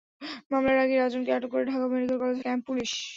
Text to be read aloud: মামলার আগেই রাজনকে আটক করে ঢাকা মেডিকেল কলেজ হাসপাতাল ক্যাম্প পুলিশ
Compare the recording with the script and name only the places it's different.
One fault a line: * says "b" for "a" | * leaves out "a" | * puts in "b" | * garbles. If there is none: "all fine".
* leaves out "হাসপাতাল"